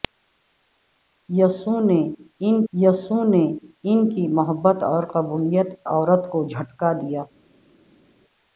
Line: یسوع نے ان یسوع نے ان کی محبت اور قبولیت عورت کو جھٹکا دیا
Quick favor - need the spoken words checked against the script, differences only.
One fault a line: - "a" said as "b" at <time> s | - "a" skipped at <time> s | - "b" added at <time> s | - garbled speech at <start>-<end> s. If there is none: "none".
none